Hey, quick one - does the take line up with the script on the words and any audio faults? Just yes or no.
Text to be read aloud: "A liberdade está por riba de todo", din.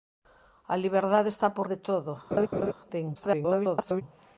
no